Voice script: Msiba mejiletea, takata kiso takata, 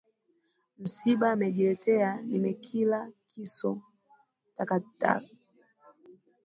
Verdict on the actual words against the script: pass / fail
fail